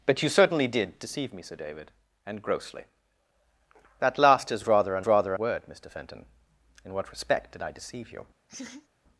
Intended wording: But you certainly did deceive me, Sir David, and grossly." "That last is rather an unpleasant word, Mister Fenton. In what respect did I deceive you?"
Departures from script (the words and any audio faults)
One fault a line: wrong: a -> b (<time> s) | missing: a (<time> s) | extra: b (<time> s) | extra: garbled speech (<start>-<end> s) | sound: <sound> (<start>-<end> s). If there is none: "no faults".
wrong: unpleasant -> rather (5.0 s)
sound: laugh (8.5-8.9 s)